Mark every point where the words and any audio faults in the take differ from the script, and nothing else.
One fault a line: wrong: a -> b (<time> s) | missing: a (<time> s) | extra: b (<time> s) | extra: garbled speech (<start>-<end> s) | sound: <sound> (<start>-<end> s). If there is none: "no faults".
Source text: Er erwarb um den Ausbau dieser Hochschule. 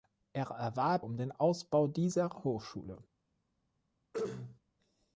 sound: throat clearing (4.1-4.6 s)